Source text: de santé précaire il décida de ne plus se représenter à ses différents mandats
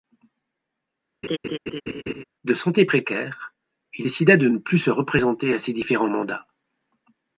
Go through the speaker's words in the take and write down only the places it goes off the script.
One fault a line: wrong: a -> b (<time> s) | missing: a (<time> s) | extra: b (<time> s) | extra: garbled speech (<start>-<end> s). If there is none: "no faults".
no faults